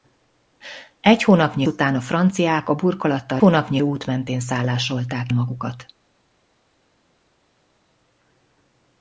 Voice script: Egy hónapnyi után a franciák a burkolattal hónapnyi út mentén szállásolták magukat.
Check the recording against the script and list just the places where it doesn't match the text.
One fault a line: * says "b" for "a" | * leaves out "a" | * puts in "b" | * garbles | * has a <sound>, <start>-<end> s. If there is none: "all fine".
all fine